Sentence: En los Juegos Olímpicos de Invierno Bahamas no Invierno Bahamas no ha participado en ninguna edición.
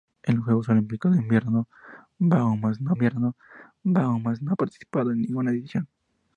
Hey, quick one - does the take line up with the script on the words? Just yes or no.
yes